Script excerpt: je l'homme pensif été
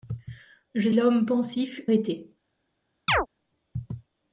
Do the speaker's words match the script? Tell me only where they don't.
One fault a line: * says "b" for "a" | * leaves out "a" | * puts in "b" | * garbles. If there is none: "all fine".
all fine